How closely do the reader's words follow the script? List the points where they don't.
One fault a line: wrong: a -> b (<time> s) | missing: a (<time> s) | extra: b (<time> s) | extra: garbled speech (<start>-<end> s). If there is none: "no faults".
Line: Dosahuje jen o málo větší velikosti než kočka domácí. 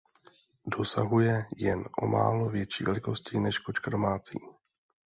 no faults